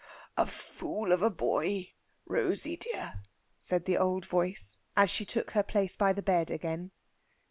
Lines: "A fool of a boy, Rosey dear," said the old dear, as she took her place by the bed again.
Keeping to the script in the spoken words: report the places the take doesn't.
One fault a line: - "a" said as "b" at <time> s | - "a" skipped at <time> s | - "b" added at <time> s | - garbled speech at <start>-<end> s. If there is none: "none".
- "dear" said as "voice" at 4.2 s